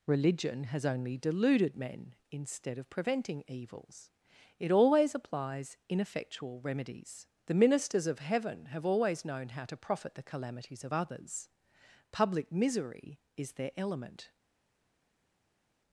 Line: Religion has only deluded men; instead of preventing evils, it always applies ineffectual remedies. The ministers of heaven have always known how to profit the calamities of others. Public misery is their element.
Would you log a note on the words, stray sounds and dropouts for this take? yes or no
no